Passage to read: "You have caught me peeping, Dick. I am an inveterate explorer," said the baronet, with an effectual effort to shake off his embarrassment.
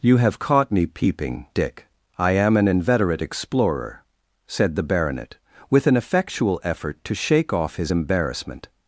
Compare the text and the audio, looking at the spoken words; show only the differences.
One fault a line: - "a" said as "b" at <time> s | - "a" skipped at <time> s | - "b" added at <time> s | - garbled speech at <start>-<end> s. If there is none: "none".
none